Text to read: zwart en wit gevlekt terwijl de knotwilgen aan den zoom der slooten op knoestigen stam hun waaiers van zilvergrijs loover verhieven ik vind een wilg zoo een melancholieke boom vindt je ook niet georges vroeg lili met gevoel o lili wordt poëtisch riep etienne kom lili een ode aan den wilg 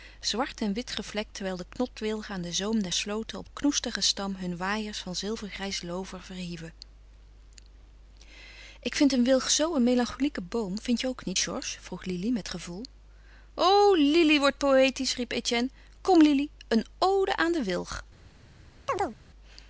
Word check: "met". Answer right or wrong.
right